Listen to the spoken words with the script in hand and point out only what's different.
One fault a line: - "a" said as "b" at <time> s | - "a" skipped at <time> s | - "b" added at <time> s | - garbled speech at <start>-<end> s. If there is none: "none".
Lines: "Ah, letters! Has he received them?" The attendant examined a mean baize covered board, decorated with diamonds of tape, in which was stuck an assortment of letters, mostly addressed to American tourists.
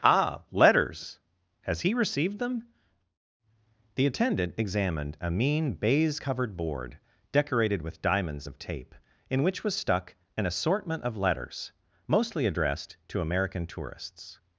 none